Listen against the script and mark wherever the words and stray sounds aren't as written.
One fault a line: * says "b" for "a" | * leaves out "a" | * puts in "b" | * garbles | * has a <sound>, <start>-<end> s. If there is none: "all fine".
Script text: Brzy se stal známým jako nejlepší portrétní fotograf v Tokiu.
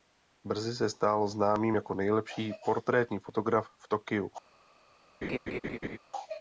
* has a laugh, 5.2-6.0 s